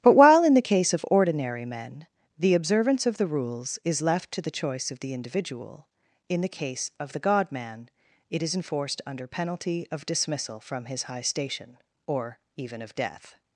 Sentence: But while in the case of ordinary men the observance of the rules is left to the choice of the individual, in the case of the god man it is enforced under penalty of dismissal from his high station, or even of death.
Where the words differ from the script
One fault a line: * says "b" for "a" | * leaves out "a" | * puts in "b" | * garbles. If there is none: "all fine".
all fine